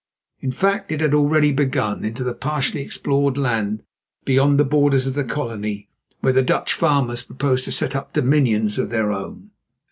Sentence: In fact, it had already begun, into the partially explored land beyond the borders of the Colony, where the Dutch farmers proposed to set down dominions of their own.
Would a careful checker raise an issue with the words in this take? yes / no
yes